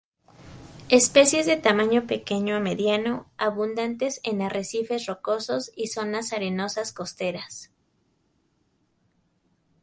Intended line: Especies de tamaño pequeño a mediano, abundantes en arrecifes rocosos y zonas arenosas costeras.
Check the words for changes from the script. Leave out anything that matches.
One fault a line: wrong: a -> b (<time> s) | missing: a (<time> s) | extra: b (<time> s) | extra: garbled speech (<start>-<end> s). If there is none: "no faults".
no faults